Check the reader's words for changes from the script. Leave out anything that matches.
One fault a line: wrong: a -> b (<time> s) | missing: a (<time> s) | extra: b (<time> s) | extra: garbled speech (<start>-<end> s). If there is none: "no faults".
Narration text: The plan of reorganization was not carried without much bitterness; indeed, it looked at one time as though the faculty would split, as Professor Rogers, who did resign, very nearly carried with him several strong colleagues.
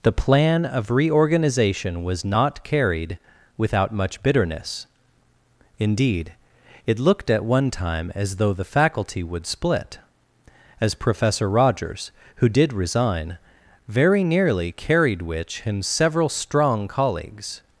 wrong: with -> which (15.2 s)